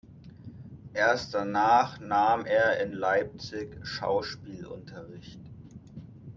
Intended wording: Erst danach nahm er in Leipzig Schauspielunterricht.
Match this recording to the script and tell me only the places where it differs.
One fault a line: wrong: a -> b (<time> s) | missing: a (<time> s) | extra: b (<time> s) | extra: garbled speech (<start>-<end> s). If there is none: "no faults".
no faults